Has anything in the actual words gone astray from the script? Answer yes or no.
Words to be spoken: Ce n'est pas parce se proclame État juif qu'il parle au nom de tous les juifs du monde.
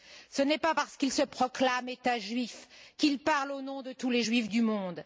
yes